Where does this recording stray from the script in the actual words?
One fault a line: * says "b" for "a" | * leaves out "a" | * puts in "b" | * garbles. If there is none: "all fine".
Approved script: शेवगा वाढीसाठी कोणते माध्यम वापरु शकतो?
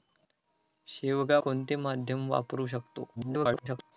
* leaves out "वाढीसाठी"
* garbles